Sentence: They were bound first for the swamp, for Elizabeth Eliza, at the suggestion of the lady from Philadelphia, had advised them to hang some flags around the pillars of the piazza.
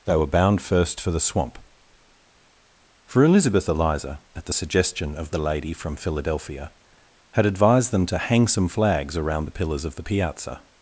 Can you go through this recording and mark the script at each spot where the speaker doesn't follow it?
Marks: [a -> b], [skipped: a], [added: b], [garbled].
They were bound first for the swamp, for Elizabeth Eliza, at the suggestion of the lady from Philadelphia, had advised them to hang some flags around the pillars of the piazza.